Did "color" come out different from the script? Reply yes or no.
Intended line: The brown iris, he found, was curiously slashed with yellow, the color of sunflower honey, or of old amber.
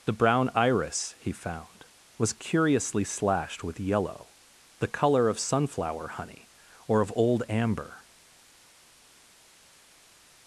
no